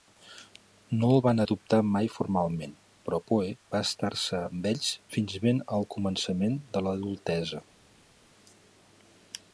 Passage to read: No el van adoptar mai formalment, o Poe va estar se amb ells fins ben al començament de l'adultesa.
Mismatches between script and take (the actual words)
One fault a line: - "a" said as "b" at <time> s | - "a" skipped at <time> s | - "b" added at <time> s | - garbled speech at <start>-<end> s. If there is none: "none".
- "o" said as "però" at 3.1 s